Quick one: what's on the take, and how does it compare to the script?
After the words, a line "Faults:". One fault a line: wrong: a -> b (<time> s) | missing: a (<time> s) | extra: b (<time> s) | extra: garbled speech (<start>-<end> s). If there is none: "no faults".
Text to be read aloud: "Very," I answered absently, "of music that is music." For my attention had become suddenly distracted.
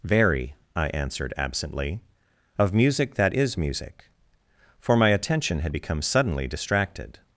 "Very," I answered absently, "of music that is music." For my attention had become suddenly distracted.
Faults:
no faults